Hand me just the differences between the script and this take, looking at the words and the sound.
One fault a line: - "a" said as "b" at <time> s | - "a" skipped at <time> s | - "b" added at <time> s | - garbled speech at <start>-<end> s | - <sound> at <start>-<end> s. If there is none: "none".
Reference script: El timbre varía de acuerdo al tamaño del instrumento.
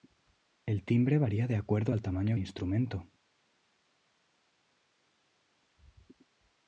- "del" skipped at 2.4 s